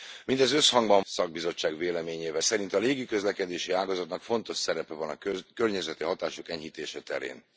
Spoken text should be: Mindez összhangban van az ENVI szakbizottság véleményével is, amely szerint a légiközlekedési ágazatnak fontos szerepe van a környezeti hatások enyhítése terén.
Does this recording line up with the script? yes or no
no